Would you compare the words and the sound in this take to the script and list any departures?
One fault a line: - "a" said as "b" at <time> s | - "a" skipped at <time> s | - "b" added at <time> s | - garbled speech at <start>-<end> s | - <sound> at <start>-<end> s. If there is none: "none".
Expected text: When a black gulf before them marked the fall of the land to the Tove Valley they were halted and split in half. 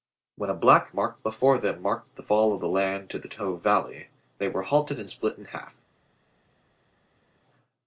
- "gulf" said as "marked" at 0.9 s